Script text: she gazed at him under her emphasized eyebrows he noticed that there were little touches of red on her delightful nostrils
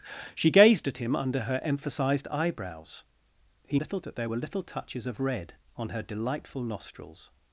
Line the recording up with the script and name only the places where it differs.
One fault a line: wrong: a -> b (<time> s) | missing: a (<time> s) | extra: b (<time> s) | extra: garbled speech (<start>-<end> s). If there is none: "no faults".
wrong: noticed -> little (3.7 s)